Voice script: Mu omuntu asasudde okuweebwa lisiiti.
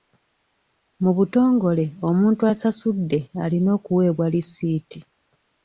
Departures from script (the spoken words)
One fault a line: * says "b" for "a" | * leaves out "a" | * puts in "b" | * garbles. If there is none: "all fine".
* puts in "butongole"
* puts in "alina"